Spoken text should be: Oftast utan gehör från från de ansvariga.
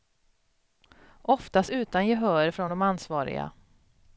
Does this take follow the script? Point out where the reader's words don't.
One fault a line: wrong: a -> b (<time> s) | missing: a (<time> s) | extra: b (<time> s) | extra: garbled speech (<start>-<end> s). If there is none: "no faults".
missing: från (2.7 s)